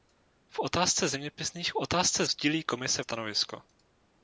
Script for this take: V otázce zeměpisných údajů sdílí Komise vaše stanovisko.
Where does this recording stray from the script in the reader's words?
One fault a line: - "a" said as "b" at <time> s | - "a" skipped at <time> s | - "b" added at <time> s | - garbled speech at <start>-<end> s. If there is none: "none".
- "údajů" said as "otázce" at 1.7 s
- "vaše" skipped at 3.0 s